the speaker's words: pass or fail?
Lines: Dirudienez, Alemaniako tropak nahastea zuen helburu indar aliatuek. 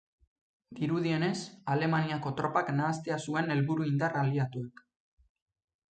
pass